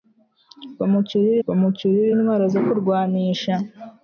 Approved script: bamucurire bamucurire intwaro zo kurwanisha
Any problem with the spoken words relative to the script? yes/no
no